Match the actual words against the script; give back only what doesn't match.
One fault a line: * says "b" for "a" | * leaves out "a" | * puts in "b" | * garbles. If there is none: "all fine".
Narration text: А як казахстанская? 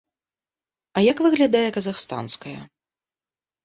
* puts in "выглядае"